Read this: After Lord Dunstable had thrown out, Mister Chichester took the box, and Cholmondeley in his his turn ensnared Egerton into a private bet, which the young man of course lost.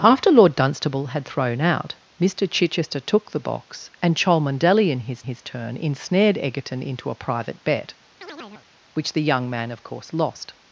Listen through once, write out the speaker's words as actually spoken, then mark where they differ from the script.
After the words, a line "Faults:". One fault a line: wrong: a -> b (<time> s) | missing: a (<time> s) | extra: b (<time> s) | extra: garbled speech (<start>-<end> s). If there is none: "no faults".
After Lord Dunstable had thrown out, Mister Chichester took the box, and Cholmondeley in his his turn ensnared Egerton into a private bet, which the young man of course lost.
Faults:
no faults